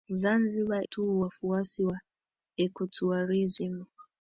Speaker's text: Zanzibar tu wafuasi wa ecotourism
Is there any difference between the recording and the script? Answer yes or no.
no